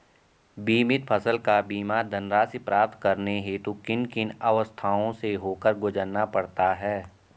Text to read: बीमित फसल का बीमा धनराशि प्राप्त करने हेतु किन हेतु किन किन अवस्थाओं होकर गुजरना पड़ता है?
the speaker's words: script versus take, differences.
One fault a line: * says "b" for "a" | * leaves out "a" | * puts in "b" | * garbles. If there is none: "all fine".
* leaves out "हेतु"
* says "अवस्थाओं से" for "किन अवस्थाओं"